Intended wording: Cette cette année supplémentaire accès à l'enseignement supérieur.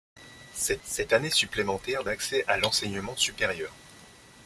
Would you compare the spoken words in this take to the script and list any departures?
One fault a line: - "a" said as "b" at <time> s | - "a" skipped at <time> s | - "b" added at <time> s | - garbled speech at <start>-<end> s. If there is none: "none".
none